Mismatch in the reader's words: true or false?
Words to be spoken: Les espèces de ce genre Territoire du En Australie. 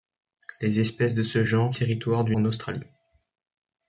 false